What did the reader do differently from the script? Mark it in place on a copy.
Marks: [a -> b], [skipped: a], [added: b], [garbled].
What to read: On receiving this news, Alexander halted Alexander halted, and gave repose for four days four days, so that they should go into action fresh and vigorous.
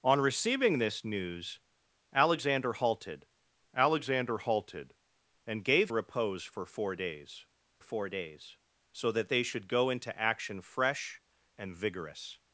On receiving this news, Alexander halted Alexander halted, and gave repose for four days four days, so that they should go into action fresh and vigorous.